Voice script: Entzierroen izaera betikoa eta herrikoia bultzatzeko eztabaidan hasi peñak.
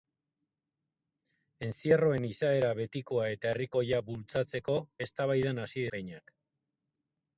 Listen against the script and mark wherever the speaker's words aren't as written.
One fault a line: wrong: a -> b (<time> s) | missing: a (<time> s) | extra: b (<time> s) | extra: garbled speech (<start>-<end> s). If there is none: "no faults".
no faults